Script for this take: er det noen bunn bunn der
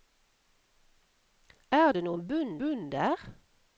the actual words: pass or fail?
pass